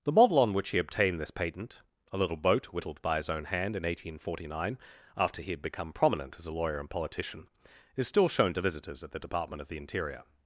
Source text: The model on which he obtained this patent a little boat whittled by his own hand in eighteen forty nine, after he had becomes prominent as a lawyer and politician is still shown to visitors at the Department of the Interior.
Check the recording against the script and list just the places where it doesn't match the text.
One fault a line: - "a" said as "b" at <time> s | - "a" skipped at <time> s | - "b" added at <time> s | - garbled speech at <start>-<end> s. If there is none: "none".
- "becomes" said as "become" at 5.6 s